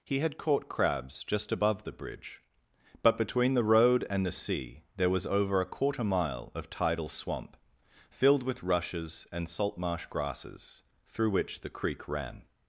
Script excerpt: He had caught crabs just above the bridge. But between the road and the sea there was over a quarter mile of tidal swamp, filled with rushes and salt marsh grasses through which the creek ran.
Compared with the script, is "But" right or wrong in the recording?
right